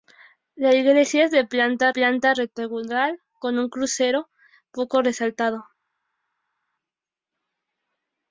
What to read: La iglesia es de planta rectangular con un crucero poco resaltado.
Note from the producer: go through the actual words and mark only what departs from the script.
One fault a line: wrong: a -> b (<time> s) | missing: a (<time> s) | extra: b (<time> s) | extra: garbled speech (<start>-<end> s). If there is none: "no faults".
extra: planta (1.9 s)